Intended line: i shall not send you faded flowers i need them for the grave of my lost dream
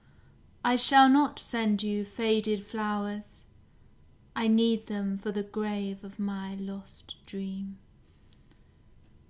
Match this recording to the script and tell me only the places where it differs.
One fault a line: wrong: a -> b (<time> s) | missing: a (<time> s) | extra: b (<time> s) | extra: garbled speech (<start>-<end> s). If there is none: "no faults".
no faults